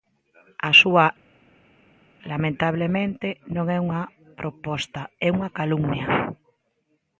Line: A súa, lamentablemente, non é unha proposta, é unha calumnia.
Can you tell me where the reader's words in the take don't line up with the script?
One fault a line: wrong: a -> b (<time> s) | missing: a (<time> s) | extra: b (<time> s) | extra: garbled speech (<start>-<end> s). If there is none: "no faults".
no faults